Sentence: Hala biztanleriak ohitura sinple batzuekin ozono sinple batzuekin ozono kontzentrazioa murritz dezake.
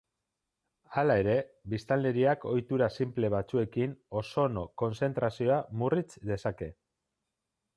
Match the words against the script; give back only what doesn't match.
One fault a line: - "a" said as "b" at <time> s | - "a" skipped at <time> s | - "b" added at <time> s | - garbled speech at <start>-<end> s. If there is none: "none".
- "ere" added at 1.2 s
- "sinple batzuekin ozono" skipped at 4.7 s